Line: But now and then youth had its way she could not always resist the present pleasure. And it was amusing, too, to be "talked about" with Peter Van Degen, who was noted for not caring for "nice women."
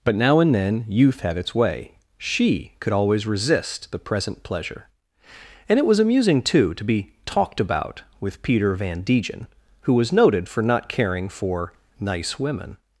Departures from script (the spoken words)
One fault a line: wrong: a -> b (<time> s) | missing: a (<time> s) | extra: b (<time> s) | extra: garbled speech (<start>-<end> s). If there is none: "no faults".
missing: not (2.9 s)